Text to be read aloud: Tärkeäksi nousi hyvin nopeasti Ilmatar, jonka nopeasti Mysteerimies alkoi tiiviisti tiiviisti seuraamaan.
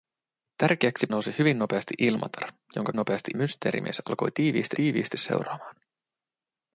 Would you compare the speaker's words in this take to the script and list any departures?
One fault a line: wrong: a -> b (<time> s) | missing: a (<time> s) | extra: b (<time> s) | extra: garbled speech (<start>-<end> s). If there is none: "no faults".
no faults